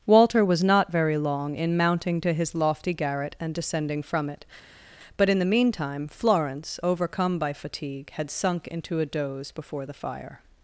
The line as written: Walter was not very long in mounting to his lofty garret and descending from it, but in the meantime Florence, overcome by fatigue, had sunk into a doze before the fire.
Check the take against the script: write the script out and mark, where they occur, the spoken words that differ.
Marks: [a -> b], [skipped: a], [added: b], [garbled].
Walter was not very long in mounting to his lofty garret and descending from it, but in the meantime Florence, overcome by fatigue, had sunk into a doze before the fire.